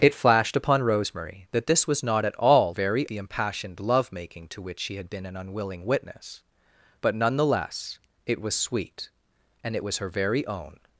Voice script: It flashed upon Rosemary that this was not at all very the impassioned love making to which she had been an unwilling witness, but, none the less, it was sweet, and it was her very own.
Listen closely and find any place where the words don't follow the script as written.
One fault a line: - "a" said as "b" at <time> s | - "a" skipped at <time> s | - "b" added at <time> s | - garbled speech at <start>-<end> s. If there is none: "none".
none